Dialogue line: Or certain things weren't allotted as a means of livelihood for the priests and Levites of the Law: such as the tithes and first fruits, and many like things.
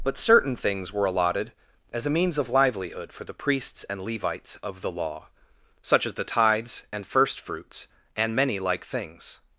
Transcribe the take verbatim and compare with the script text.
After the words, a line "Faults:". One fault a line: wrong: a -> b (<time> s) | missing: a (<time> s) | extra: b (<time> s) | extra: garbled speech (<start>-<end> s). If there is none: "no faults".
But certain things were allotted as a means of livelihood for the priests and Levites of the Law: such as the tithes and first fruits, and many like things.
Faults:
wrong: Or -> But (0.0 s)
wrong: weren't -> were (0.9 s)